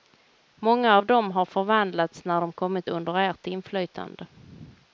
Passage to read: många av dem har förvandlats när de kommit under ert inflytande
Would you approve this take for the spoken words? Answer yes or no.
yes